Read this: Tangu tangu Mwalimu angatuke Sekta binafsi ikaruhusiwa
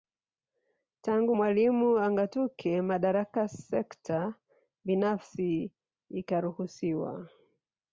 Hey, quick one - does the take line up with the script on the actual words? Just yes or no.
no